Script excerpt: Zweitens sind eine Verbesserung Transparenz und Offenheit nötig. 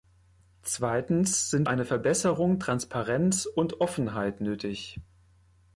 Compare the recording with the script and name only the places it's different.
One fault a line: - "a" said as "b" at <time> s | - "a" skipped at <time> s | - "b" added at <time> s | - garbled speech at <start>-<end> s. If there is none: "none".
none